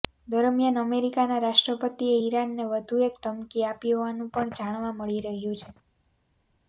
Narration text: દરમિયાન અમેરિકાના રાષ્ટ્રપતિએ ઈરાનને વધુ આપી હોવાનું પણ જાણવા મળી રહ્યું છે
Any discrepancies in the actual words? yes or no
yes